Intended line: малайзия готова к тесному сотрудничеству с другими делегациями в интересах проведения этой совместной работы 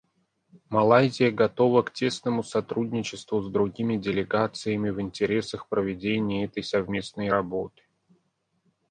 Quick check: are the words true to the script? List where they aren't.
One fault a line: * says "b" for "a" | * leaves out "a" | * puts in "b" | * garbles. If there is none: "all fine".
all fine